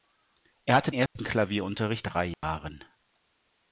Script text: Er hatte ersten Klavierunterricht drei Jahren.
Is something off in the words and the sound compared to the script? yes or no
yes